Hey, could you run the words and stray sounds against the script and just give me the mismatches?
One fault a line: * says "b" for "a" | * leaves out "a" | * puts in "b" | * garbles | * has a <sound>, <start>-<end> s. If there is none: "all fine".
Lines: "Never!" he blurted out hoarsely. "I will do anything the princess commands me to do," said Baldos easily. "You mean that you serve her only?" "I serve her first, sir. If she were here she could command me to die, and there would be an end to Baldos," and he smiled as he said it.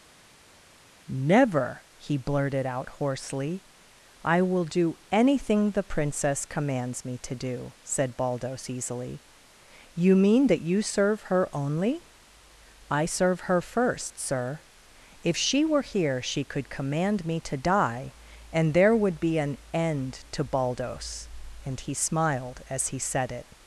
all fine